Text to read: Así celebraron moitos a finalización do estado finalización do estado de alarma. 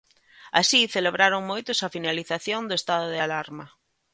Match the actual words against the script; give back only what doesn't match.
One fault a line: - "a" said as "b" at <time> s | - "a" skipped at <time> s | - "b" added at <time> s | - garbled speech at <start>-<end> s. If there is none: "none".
- "finalización do estado" skipped at 3.1 s